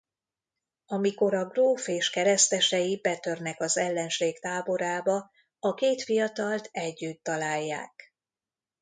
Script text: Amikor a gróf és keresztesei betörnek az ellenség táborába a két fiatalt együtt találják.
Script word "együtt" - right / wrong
right